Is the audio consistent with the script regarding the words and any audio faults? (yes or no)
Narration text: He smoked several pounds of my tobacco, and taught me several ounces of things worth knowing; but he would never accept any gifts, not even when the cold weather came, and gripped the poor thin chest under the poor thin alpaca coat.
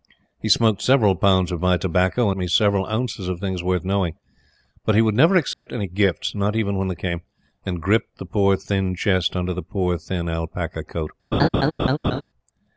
no